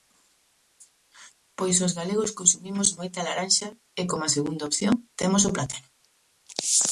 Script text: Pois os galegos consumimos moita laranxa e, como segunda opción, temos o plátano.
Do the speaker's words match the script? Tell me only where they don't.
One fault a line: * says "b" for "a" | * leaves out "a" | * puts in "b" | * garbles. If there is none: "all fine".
all fine